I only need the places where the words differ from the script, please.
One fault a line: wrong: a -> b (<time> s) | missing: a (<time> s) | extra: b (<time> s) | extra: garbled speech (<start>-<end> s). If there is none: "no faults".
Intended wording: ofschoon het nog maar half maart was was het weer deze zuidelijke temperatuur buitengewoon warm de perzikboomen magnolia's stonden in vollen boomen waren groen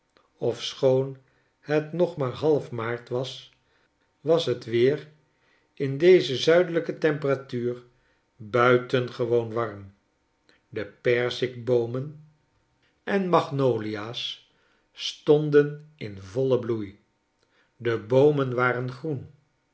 extra: in (5.7 s)
extra: en (13.0 s)
extra: bloei de (16.6 s)